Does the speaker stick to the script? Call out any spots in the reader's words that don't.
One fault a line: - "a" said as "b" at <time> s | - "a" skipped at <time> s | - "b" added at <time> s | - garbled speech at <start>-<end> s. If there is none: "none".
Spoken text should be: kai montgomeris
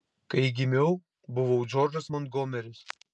- "gimiau buvau džordžas" added at 0.6 s